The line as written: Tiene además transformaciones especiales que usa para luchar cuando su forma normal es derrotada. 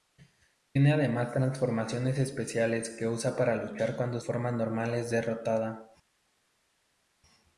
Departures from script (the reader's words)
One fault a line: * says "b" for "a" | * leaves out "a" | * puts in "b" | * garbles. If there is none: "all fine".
* leaves out "su"